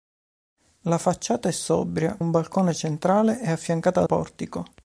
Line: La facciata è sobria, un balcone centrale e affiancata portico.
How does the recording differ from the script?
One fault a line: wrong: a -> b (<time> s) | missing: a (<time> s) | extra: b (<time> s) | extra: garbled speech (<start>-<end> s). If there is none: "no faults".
no faults